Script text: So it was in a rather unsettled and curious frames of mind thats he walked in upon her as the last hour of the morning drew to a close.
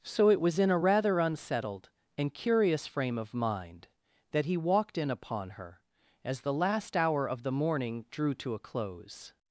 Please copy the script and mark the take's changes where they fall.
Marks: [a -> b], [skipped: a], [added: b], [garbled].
So it was in a rather unsettled and curious [frames -> frame] of mind [thats -> that] he walked in upon her as the last hour of the morning drew to a close.